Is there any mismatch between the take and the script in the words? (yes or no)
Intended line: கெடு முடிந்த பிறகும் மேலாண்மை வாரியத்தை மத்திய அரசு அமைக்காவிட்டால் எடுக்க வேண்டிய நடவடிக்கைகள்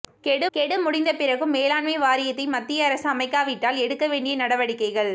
yes